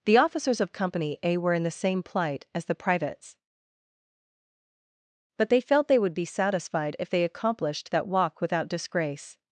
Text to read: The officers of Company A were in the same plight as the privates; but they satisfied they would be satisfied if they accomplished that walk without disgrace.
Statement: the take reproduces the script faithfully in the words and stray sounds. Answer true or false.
false